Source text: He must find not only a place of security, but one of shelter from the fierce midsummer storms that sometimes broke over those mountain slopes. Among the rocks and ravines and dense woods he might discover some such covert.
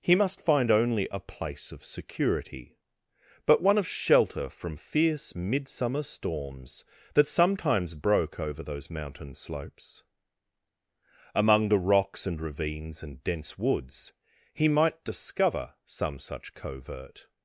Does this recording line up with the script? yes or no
no